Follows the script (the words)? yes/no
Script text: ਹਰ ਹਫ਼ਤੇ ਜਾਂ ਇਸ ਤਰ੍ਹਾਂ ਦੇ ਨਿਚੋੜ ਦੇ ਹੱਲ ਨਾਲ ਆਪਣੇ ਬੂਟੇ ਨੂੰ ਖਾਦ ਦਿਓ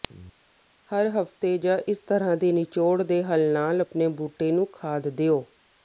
yes